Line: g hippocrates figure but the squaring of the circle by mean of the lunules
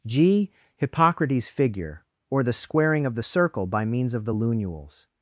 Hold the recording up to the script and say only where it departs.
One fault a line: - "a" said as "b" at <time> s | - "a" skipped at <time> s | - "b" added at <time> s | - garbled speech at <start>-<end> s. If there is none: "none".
- "but" said as "or" at 2.3 s
- "mean" said as "means" at 3.8 s